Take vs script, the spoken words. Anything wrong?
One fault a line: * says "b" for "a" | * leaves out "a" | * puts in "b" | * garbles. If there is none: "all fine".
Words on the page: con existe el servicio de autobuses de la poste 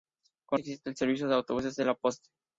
all fine